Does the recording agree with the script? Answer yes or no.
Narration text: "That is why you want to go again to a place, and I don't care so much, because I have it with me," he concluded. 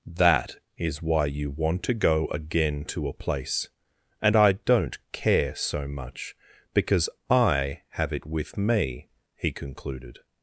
yes